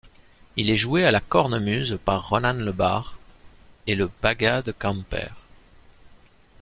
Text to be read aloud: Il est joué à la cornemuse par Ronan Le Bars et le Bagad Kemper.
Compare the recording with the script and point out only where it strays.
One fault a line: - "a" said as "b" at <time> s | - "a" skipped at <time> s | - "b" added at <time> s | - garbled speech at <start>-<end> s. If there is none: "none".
none